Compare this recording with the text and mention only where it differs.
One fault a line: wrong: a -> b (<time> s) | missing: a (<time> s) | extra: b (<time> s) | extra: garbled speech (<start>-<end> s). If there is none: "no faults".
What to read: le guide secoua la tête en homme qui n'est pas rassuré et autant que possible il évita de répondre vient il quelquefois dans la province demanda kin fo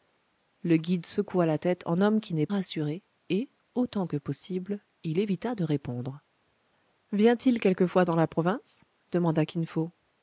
missing: pas (2.5 s)